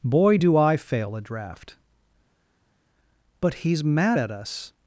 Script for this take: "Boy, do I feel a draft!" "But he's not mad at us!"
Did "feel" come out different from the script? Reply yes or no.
yes